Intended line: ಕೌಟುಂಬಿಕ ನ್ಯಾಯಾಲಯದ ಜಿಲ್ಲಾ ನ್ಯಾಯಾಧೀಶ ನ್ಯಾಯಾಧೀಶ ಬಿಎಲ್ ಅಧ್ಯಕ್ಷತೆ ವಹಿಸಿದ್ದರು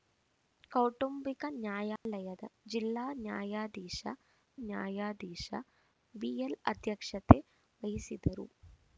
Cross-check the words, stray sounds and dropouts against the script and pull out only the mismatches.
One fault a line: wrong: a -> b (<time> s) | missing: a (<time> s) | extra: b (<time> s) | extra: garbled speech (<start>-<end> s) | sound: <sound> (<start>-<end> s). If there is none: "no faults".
sound: dropout (2.0-2.1 s)